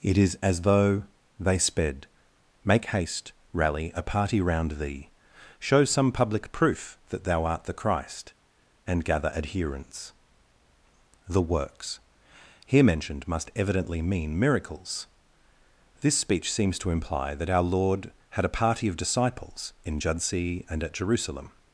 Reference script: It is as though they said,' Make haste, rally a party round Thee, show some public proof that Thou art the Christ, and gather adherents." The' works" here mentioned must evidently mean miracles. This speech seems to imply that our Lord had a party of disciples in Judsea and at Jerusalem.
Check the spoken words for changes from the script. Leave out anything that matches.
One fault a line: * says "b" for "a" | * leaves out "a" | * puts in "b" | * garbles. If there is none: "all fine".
* says "sped" for "said"